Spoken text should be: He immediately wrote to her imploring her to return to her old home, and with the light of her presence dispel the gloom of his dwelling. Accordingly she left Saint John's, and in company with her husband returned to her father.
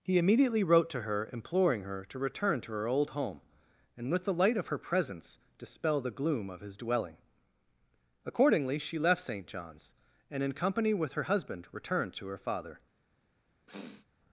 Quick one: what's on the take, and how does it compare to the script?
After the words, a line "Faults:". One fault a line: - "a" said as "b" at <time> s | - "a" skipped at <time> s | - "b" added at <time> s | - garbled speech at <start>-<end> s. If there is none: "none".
He immediately wrote to her imploring her to return to her old home, and with the light of her presence dispel the gloom of his dwelling. Accordingly she left Saint John's, and in company with her husband returned to her father.
Faults:
none